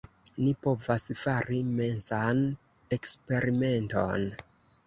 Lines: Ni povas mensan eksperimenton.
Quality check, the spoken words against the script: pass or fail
fail